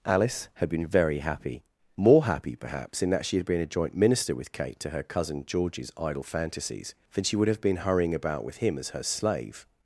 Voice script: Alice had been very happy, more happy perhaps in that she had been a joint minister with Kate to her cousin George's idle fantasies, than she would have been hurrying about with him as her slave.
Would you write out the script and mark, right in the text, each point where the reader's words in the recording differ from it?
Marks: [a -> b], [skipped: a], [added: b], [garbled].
Alice had been very happy, more happy perhaps in that she had been a joint minister with Kate to her cousin George's idle fantasies, than she would have been hurrying about with him as her slave.